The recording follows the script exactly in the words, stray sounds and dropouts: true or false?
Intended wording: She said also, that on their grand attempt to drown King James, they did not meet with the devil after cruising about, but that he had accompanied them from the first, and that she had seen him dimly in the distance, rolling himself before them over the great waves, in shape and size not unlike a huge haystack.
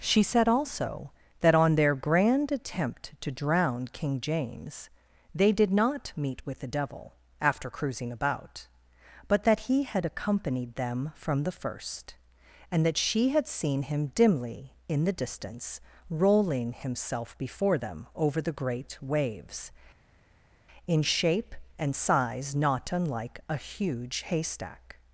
true